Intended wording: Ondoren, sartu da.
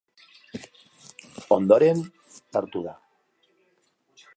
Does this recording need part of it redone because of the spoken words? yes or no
no